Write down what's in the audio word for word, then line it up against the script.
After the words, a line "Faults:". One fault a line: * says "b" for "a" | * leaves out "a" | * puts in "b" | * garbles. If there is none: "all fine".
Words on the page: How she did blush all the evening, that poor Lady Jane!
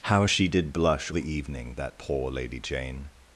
How she did blush the evening, that poor Lady Jane!
Faults:
* leaves out "all"